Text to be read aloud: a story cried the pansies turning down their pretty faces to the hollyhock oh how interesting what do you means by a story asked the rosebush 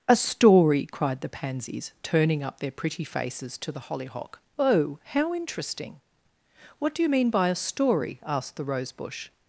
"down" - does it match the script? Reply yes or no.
no